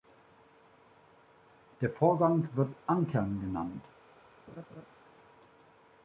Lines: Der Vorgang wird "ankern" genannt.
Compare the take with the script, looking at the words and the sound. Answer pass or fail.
fail